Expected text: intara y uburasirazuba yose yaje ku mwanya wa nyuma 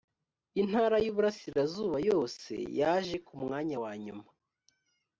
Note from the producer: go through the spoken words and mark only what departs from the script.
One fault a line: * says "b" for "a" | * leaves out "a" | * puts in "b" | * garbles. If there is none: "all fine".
all fine